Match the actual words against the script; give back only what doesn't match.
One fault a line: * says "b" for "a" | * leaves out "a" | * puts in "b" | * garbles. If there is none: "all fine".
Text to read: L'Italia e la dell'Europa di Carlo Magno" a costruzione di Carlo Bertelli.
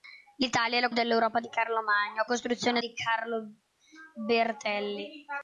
all fine